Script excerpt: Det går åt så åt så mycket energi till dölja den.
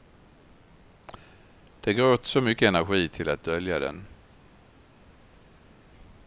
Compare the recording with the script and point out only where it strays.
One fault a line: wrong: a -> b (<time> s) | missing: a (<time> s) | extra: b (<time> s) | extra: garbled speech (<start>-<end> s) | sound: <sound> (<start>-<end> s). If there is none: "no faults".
missing: åt så (2.4 s)
extra: att (3.3 s)